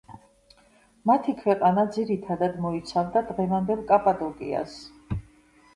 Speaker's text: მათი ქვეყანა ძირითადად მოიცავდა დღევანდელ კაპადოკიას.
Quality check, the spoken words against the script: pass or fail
pass